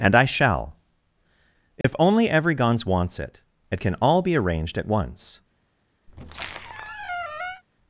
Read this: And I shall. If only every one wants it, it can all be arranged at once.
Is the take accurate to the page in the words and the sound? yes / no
no